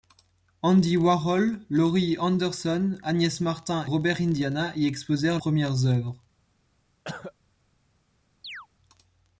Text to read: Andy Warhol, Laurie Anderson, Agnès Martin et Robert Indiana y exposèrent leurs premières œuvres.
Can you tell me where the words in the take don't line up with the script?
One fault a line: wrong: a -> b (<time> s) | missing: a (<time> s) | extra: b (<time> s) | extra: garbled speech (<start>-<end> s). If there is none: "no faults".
missing: et (3.9 s)
missing: leurs (5.4 s)